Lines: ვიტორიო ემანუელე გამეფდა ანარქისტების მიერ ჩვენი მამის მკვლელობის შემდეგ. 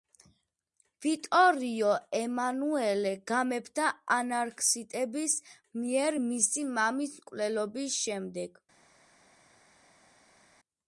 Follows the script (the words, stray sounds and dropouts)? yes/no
no